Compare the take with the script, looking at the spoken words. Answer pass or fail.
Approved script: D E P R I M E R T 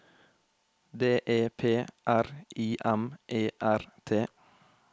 pass